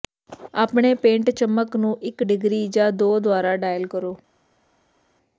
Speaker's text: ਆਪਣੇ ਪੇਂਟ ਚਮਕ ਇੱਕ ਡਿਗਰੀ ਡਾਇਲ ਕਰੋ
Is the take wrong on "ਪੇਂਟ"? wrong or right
right